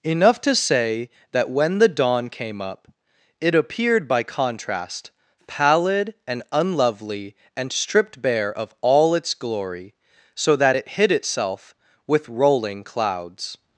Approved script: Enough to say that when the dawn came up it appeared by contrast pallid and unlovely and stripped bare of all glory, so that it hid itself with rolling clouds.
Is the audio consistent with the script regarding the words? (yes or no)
no